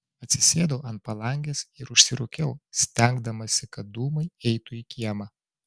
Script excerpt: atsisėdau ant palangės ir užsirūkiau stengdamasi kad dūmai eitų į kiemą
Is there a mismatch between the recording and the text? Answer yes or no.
no